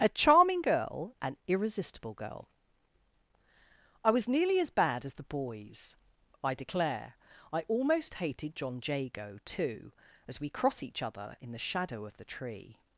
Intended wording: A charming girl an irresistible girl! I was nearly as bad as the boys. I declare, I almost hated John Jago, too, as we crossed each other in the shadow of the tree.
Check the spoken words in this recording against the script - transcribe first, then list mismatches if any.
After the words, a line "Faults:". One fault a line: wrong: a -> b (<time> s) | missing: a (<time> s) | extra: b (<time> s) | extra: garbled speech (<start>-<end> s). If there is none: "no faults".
A charming girl an irresistible girl! I was nearly as bad as the boys. I declare, I almost hated John Jago, too, as we cross each other in the shadow of the tree.
Faults:
wrong: crossed -> cross (10.5 s)